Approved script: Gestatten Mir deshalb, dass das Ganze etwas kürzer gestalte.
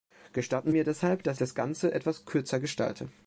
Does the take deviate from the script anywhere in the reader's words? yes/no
no